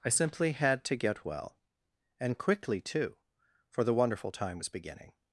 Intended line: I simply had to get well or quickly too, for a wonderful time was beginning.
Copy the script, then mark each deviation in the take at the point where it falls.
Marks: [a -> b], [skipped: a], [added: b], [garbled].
I simply had to get well [or -> and] quickly too, for [a -> the] wonderful time was beginning.